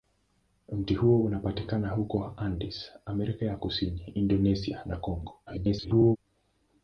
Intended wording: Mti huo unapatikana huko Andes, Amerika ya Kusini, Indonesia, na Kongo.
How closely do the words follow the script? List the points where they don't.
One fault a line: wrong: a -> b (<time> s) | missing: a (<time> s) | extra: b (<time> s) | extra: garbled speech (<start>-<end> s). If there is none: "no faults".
extra: garbled speech (5.5-6.2 s)